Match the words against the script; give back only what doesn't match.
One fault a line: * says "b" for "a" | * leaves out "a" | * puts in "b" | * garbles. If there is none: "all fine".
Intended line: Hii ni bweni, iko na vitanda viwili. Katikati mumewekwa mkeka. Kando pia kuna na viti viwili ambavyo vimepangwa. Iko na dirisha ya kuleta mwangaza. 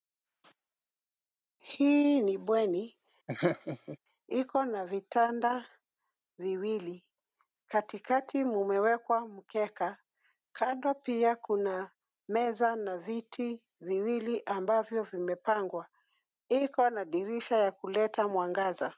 * puts in "meza"